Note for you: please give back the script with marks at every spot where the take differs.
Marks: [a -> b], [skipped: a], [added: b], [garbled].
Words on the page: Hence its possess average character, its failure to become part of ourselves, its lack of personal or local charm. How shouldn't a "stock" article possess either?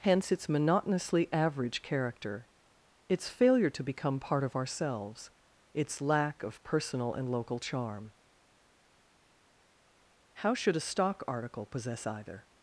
Hence its [possess -> monotonously] average character, its failure to become part of ourselves, its lack of personal [or -> and] local charm. How [shouldn't -> should] a "stock" article possess either?